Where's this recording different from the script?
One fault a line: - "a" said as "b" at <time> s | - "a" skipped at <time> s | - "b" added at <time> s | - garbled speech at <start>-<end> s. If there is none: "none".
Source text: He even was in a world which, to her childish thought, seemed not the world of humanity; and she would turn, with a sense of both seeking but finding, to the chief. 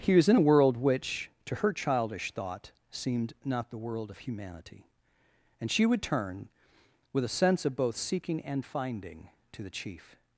- "even" skipped at 0.1 s
- "but" said as "and" at 8.4 s